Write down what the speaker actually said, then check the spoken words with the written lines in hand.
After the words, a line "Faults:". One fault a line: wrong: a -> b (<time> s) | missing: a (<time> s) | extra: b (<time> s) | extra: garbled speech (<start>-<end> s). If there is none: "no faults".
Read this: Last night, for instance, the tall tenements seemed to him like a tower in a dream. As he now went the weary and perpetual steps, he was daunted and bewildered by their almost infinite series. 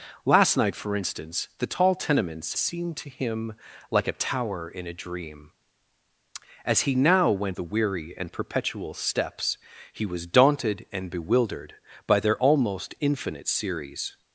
Last night, for instance, the tall tenements seemed to him like a tower in a dream. As he now went the weary and perpetual steps, he was daunted and bewildered by their almost infinite series.
Faults:
no faults